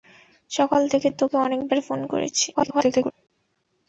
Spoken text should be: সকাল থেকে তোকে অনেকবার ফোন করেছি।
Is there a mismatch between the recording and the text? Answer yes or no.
yes